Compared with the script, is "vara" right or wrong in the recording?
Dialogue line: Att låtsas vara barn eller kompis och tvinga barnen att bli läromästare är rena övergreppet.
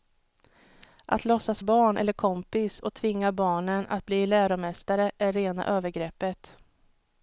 wrong